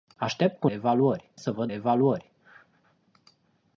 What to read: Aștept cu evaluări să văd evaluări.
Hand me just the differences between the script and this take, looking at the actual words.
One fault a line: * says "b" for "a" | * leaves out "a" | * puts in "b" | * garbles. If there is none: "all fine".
all fine